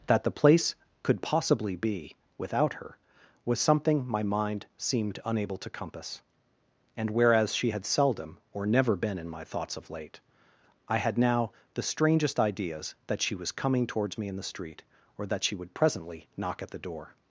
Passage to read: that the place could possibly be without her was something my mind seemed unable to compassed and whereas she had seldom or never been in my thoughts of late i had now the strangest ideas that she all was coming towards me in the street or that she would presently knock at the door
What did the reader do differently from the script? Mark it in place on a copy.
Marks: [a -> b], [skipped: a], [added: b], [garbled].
that the place could possibly be without her was something my mind seemed unable to [compassed -> compass] and whereas she had seldom or never been in my thoughts of late i had now the strangest ideas that she [skipped: all] was coming towards me in the street or that she would presently knock at the door